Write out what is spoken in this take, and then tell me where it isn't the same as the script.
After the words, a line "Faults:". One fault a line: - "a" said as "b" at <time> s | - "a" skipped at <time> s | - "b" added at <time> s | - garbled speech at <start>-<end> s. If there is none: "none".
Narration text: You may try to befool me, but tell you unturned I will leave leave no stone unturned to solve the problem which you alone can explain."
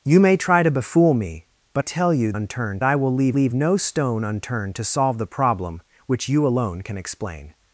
You may try to befool me, but tell you unturned I will leave leave no stone unturned to solve the problem which you alone can explain."
Faults:
none